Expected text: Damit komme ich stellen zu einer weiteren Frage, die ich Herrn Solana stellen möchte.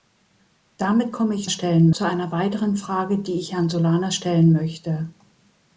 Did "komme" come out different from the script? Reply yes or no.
no